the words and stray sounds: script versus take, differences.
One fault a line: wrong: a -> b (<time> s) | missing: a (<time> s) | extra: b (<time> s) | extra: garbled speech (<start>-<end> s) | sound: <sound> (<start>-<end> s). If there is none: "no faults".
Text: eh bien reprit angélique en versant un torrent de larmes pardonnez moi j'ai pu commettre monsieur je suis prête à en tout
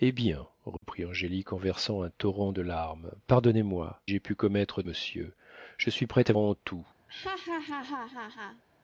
sound: dropout (0.8-0.8 s)
sound: laugh (7.1-8.6 s)